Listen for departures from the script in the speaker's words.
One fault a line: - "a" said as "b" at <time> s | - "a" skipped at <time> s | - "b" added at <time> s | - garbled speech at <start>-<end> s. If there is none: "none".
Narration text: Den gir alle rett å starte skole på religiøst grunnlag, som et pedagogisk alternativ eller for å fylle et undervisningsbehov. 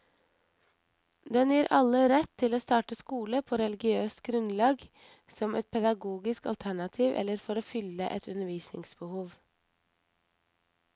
- "til" added at 2.4 s